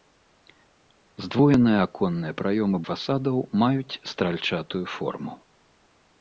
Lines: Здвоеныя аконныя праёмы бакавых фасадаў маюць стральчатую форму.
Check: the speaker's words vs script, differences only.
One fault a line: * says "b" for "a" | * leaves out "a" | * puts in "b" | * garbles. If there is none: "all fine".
* leaves out "бакавых"